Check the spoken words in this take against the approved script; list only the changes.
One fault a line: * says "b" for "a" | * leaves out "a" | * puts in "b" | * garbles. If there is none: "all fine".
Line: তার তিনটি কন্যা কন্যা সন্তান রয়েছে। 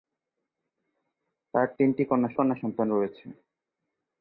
all fine